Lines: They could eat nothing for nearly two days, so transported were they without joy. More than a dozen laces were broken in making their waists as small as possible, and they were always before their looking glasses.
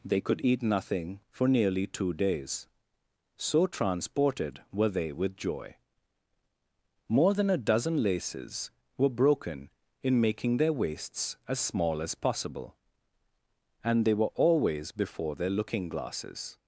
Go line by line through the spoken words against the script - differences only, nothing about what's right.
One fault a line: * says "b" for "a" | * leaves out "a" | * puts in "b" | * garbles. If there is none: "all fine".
* says "with" for "without"